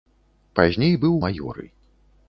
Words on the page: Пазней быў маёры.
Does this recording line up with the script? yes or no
yes